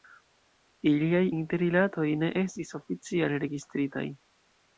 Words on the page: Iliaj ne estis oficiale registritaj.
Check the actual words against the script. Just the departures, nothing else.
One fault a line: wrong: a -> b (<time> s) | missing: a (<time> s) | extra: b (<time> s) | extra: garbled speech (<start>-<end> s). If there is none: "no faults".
extra: interrilatoj (1.4 s)